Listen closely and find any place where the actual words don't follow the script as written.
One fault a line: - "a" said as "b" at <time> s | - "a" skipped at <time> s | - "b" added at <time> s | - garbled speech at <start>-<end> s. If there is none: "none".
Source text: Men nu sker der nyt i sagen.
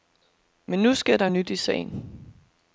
none